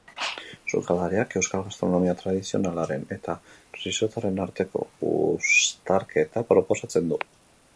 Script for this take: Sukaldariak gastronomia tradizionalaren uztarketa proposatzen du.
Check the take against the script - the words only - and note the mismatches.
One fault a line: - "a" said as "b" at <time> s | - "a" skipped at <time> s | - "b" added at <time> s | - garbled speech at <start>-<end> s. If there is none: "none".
- "euskal" added at 1.4 s
- "eta risottoaren arteko" added at 3.2 s